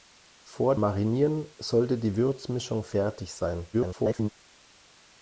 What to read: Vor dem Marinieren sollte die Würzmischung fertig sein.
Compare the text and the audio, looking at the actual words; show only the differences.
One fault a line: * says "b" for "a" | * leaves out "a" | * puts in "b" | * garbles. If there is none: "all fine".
* leaves out "dem"
* garbles